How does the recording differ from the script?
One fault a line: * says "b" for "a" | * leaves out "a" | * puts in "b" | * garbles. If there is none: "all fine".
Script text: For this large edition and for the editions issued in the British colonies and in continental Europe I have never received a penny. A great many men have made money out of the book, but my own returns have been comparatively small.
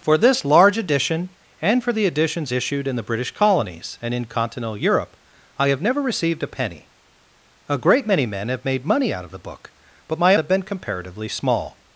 * leaves out "own returns"